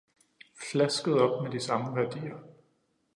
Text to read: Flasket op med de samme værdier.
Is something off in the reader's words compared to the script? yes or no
no